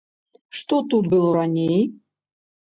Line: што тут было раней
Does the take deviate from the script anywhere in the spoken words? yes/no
no